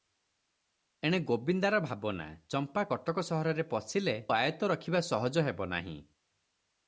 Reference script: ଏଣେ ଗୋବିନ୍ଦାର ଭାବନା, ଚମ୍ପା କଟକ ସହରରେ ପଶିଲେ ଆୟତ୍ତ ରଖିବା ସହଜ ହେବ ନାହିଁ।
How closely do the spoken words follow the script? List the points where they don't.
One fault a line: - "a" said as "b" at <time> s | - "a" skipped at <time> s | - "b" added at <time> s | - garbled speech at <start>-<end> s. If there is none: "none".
none